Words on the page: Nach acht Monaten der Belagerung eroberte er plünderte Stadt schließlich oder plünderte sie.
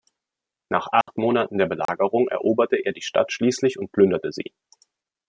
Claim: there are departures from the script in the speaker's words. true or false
true